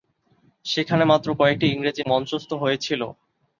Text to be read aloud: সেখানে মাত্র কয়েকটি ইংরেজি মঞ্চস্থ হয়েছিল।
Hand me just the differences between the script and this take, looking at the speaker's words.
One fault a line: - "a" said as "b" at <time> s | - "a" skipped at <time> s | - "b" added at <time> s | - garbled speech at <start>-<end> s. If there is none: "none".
none